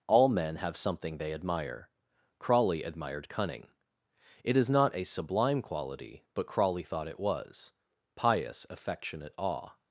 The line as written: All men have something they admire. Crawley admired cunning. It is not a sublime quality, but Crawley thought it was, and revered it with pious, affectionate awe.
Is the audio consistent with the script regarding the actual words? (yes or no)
no